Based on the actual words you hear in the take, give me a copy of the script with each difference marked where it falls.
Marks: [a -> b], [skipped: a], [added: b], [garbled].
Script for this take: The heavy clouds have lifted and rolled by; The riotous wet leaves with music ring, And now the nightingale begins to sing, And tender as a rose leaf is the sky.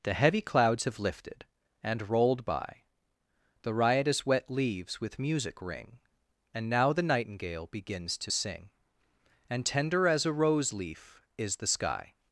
The heavy clouds have lifted and rolled by; The riotous wet leaves with music ring, And now the nightingale begins to sing, And tender as a rose leaf is the sky.